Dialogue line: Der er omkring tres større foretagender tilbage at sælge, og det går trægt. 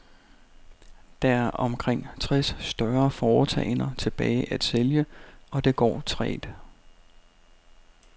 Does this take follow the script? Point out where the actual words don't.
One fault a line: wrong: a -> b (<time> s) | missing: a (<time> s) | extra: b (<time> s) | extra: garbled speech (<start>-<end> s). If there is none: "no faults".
no faults